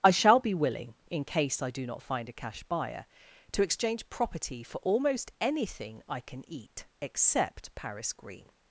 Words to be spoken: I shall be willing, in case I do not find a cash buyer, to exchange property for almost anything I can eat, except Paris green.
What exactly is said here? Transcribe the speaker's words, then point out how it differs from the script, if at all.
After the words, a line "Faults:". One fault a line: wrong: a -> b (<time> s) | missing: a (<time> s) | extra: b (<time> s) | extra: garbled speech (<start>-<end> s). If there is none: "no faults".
I shall be willing, in case I do not find a cash buyer, to exchange property for almost anything I can eat, except Paris green.
Faults:
no faults